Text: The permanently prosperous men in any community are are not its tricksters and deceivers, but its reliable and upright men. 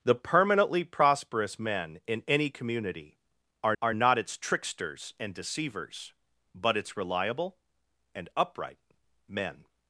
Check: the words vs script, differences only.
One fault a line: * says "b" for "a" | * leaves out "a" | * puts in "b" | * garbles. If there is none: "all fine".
all fine